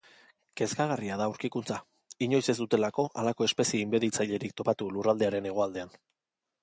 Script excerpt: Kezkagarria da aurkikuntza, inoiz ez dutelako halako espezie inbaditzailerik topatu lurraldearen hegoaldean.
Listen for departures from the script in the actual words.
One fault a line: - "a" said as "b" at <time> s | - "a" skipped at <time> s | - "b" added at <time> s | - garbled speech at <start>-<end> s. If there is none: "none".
none